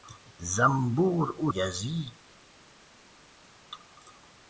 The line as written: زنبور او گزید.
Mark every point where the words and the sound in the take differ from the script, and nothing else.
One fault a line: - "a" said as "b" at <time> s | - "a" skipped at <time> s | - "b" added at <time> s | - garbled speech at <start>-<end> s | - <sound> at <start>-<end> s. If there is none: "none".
none